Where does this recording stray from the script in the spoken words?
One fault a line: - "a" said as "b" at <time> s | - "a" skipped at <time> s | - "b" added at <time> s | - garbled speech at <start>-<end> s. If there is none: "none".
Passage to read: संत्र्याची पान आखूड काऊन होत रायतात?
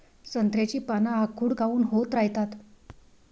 none